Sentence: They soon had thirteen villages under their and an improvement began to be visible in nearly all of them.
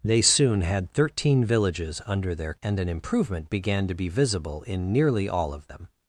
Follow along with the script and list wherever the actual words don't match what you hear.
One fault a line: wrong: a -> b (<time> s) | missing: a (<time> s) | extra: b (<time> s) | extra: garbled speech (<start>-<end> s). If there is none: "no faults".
no faults